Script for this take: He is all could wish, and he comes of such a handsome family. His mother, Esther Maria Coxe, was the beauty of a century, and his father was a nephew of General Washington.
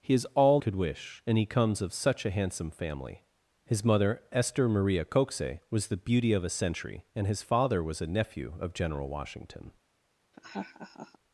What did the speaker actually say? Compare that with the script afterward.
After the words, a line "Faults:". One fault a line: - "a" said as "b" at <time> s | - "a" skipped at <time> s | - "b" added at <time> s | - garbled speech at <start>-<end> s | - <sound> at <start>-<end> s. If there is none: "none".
He is all could wish, and he comes of such a handsome family. His mother, Esther Maria Coxe, was the beauty of a century, and his father was a nephew of General Washington.
Faults:
- laugh at 10.3-11.2 s